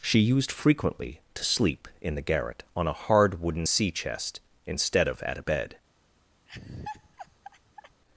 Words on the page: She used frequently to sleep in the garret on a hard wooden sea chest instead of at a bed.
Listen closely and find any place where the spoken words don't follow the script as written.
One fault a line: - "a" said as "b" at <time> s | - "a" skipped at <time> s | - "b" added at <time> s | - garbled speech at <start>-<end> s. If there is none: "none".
none